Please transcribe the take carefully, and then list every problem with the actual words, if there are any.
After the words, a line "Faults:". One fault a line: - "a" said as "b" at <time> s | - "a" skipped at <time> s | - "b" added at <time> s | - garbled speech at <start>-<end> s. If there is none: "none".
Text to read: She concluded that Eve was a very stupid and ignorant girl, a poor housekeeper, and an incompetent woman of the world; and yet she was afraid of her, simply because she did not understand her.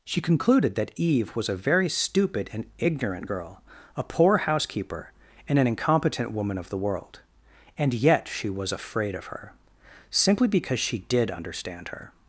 She concluded that Eve was a very stupid and ignorant girl, a poor housekeeper, and an incompetent woman of the world; and yet she was afraid of her, simply because she did understand her.
Faults:
- "not" skipped at 11.3 s